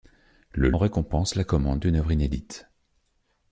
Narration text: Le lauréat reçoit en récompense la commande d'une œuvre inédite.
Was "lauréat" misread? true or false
true